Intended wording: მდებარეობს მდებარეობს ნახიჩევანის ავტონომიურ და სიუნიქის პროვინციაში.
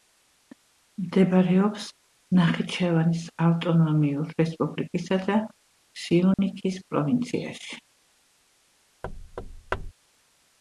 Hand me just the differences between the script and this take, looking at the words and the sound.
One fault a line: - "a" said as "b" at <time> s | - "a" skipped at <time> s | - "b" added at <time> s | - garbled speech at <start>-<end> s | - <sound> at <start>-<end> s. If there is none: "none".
- "მდებარეობს" skipped at 1.8 s
- "რესპუბლიკისა" added at 4.4 s
- dropout at 6.3-6.4 s
- thud at 9.0-9.9 s